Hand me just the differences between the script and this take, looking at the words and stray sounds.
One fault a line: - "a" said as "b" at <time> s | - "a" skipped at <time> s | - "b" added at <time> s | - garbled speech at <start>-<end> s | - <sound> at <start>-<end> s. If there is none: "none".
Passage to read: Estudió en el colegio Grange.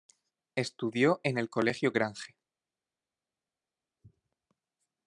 none